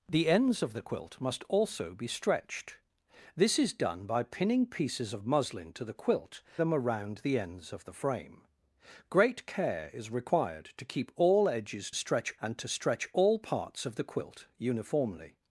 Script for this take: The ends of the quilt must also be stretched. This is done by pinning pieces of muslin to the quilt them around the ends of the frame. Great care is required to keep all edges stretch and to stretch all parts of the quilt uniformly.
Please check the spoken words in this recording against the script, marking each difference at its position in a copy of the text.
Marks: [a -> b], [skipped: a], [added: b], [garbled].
The ends of the quilt must also be stretched. This is done by pinning pieces of muslin to the quilt them around the ends of the frame. Great care is required to keep all edges stretch and to stretch all parts of the quilt uniformly.